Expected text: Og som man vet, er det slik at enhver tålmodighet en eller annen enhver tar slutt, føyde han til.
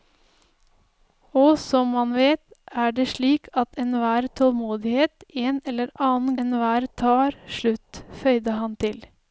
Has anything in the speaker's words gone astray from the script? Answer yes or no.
no